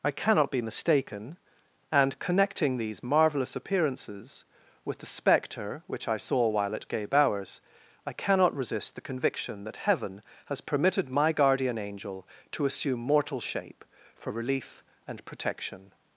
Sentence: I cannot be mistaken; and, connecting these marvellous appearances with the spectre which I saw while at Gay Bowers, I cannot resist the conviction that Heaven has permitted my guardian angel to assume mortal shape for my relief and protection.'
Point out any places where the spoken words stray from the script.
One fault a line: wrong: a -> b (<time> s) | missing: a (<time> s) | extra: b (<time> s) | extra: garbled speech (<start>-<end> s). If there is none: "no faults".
missing: my (14.3 s)